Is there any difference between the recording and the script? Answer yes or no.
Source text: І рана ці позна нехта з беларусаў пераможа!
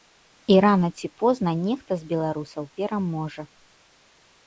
no